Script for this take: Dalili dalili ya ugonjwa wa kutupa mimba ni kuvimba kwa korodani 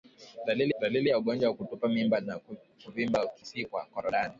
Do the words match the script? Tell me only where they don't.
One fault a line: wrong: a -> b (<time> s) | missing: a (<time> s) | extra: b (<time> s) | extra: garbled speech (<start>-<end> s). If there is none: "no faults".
no faults